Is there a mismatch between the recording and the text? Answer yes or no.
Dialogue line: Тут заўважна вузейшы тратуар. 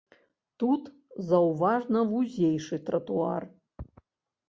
no